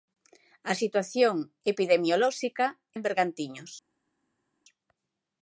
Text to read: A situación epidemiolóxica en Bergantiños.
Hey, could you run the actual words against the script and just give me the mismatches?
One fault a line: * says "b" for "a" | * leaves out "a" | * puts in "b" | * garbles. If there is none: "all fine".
all fine